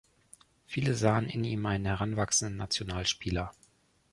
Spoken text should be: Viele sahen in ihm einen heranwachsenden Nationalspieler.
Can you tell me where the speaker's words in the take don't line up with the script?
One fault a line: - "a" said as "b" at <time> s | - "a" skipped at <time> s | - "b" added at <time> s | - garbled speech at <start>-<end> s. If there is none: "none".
none